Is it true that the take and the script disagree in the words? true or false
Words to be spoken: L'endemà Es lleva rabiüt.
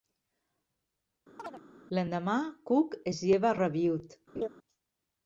true